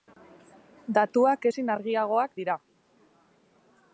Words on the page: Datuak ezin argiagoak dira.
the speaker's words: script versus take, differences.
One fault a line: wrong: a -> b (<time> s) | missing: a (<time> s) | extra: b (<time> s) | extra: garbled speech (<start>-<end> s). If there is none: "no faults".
no faults